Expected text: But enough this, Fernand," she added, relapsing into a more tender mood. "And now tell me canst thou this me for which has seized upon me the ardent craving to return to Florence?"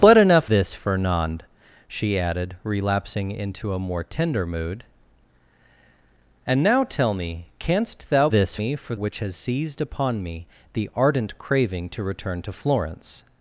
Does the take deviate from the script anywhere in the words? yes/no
no